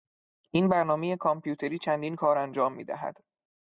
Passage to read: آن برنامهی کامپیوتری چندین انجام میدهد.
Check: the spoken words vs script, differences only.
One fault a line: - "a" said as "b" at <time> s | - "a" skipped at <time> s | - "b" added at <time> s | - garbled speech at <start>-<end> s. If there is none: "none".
- "آن" said as "این" at 0.5 s
- "کار" added at 2.1 s